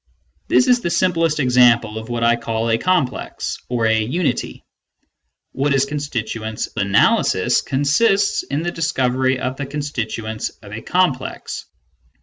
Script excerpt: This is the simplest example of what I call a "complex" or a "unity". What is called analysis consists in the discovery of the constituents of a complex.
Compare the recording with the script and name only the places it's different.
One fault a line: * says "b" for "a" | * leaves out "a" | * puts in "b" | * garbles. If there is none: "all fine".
* says "constituents" for "called"